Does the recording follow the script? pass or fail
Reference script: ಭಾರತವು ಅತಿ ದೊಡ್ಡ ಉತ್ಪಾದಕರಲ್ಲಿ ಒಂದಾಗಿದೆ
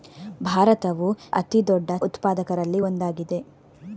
pass